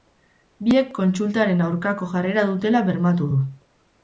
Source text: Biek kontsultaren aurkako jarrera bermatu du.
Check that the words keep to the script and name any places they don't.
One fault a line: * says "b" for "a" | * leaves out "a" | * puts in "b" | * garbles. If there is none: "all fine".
* puts in "dutela"